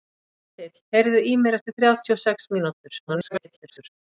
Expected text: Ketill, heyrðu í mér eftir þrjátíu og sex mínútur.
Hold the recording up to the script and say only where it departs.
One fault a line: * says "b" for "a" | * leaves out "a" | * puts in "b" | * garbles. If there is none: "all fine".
* garbles